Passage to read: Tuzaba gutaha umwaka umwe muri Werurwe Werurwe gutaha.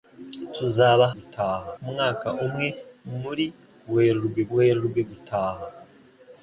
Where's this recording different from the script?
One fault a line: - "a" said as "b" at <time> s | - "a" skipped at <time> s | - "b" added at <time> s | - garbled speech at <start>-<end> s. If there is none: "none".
none